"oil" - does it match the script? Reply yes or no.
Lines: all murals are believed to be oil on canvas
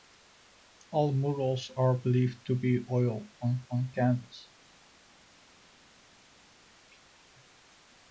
yes